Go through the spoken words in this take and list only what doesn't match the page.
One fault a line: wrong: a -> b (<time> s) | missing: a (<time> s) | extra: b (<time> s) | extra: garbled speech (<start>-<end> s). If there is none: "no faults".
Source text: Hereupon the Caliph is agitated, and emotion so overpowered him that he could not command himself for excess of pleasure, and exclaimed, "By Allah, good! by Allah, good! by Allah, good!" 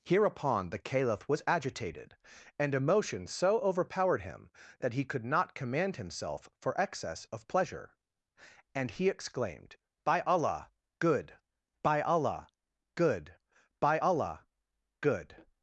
wrong: is -> was (1.3 s)
extra: he (8.9 s)